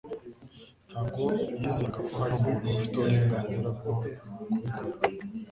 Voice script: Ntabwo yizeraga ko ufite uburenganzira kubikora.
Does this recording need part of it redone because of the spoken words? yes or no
yes